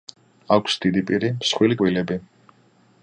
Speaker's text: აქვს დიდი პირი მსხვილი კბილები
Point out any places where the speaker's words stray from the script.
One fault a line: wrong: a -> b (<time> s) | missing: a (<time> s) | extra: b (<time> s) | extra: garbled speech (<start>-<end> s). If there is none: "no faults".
no faults